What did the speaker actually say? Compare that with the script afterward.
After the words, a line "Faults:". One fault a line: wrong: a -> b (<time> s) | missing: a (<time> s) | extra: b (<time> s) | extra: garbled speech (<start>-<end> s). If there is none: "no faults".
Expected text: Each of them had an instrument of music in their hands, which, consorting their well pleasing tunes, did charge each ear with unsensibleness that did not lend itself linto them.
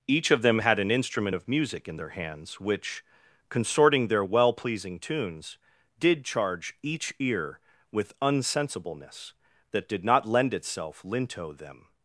Each of them had an instrument of music in their hands, which, consorting their well pleasing tunes, did charge each ear with unsensibleness that did not lend itself linto them.
Faults:
no faults